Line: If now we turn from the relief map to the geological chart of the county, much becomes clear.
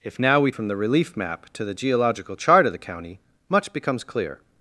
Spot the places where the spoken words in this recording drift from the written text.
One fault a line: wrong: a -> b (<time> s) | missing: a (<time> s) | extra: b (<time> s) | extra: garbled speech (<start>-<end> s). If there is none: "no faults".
missing: turn (0.5 s)